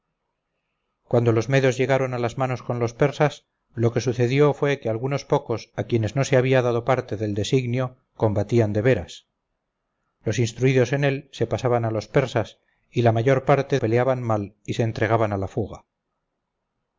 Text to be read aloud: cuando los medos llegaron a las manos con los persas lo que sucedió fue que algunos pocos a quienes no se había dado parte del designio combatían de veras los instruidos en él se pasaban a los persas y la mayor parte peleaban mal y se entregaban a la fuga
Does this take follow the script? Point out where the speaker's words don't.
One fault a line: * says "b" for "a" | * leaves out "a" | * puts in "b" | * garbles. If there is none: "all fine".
all fine